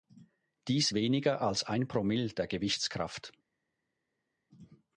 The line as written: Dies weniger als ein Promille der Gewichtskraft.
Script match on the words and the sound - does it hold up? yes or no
yes